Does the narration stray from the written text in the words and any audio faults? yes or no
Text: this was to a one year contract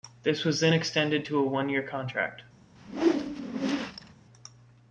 yes